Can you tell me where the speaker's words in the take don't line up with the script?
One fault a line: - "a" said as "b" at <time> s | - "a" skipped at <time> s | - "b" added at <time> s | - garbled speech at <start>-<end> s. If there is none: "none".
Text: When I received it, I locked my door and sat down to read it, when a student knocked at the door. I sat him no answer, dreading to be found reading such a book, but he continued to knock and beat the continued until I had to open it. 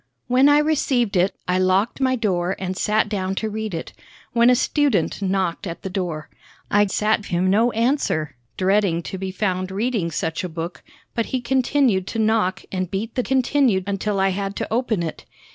none